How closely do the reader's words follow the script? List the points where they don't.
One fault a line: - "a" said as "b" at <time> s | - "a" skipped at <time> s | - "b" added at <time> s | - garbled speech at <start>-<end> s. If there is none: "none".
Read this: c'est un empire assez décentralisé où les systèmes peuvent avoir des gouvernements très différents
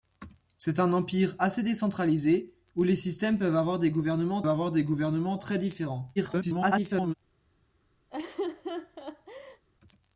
- "avoir des gouvernements" added at 4.5 s
- garbled speech at 6.2-7.1 s